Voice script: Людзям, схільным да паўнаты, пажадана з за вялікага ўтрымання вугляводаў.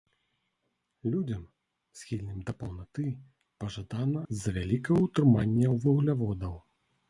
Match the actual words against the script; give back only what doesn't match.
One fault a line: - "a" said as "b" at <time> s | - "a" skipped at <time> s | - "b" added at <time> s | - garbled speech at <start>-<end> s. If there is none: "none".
none